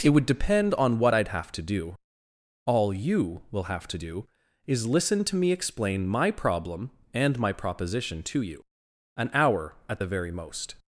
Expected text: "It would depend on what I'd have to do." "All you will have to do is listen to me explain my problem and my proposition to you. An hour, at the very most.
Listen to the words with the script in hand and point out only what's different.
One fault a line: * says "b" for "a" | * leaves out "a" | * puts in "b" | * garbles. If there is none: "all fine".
all fine